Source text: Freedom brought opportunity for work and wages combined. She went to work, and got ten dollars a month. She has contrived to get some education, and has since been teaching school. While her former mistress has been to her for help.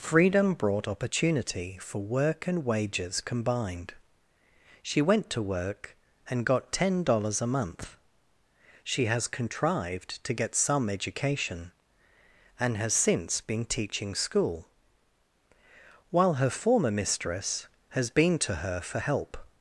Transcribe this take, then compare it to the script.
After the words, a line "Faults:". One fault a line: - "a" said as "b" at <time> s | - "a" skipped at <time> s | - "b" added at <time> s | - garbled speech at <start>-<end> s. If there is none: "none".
Freedom brought opportunity for work and wages combined. She went to work, and got ten dollars a month. She has contrived to get some education, and has since been teaching school. While her former mistress has been to her for help.
Faults:
none